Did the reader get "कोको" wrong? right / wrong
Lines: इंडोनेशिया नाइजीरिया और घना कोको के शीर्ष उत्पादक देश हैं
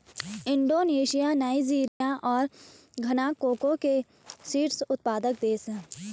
right